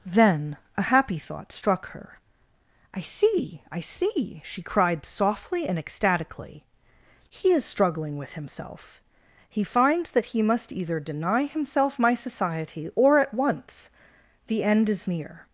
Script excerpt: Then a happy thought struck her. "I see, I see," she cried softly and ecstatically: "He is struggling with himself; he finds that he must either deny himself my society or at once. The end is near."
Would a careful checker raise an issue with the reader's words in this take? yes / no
no